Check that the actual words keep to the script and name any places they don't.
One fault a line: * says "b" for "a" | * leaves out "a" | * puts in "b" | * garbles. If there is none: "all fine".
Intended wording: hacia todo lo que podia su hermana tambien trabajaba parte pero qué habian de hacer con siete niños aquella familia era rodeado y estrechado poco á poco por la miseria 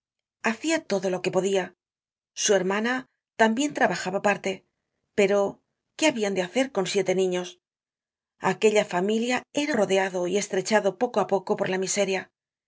all fine